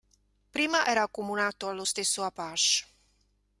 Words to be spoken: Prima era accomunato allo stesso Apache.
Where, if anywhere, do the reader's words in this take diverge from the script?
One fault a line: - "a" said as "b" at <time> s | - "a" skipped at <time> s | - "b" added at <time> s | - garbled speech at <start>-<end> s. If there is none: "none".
none